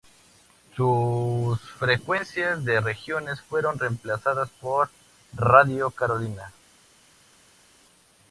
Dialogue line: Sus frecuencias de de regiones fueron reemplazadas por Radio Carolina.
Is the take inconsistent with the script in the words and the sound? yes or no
yes